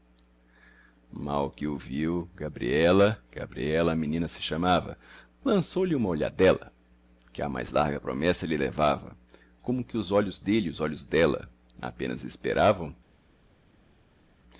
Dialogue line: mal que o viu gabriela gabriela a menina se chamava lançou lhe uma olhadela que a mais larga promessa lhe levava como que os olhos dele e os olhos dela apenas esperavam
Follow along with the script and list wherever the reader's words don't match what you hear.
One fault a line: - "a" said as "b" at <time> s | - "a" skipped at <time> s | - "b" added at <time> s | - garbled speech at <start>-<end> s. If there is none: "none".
none